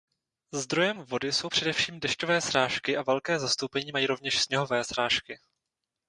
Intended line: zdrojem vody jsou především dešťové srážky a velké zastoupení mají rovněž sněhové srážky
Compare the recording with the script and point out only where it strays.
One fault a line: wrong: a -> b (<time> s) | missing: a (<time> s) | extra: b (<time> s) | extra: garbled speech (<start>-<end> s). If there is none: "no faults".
no faults